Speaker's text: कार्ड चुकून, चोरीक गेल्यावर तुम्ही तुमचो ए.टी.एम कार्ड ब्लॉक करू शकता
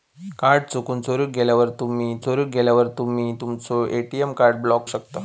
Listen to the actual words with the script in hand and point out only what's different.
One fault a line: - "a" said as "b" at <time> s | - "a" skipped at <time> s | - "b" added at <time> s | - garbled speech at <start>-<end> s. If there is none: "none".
- "चोरीक गेल्यावर तुम्ही" added at 2.2 s
- "करू" skipped at 4.9 s